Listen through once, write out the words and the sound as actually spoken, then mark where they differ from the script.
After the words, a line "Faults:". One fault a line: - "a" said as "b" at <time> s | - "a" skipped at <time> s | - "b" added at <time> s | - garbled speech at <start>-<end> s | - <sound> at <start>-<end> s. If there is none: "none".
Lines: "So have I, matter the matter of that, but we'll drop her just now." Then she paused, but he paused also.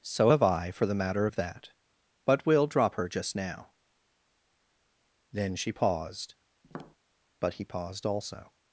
"So have I, for the matter of that, but we'll drop her just now." Then she paused, but he paused also.
Faults:
- "matter" said as "for" at 0.7 s
- tap at 6.6-7.0 s